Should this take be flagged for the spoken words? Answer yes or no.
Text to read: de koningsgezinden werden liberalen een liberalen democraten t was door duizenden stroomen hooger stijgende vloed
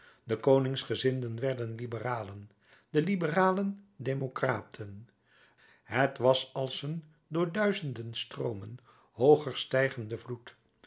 yes